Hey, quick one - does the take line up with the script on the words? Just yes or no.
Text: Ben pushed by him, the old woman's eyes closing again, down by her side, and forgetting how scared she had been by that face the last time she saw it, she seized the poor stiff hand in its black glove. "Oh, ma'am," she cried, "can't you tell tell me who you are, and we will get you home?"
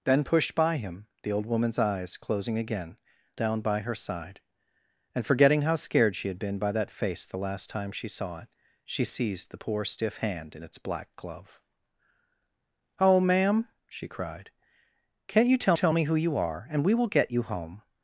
yes